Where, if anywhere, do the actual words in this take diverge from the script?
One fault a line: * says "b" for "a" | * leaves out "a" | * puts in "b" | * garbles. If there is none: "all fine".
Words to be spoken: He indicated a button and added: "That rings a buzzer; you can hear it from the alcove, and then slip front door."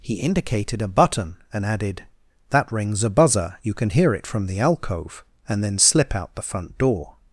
* puts in "out the"